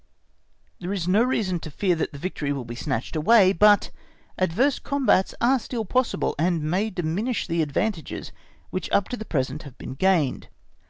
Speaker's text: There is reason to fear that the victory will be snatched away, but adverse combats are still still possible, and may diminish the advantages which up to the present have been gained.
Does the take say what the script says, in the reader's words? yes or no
no